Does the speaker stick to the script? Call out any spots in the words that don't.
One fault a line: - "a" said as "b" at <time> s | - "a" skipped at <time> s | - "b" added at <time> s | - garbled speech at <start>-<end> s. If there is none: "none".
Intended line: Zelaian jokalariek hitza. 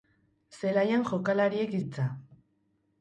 none